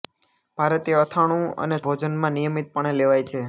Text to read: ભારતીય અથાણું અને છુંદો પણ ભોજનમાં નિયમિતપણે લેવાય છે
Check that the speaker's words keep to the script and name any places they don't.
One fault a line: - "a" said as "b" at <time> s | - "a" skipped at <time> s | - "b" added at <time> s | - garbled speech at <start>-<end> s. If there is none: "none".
- "છુંદો પણ" skipped at 1.8 s